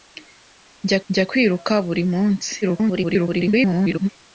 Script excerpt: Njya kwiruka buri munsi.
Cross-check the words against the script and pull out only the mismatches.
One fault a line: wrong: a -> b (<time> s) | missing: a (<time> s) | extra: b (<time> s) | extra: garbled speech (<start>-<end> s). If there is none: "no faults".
extra: njya (1.1 s)
extra: garbled speech (2.6-4.1 s)